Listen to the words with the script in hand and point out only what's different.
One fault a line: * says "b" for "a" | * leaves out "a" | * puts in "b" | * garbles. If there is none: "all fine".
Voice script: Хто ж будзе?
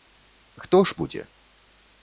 all fine